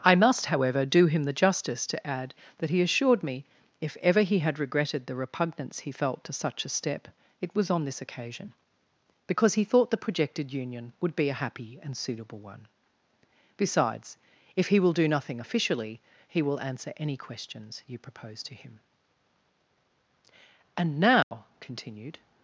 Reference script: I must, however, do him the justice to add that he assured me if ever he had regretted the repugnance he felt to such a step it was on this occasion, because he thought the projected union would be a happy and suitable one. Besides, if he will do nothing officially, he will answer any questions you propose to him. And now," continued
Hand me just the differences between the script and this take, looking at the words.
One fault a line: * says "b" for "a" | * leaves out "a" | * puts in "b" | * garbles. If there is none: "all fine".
all fine